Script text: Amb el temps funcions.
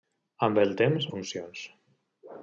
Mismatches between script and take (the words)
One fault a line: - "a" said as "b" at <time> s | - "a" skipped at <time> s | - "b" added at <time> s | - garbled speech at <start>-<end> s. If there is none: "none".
none